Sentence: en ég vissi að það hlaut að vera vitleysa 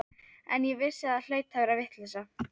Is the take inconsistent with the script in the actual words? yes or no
no